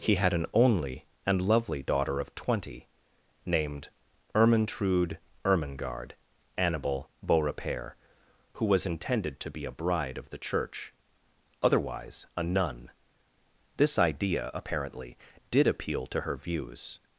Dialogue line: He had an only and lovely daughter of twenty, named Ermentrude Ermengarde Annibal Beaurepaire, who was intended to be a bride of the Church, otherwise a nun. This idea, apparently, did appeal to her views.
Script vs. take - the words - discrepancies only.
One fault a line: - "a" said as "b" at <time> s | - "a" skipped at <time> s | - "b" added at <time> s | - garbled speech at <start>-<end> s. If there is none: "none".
none